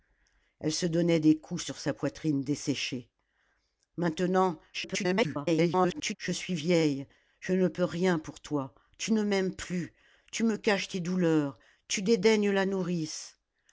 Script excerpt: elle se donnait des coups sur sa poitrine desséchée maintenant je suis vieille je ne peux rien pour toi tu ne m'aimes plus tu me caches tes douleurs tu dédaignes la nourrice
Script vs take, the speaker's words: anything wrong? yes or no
yes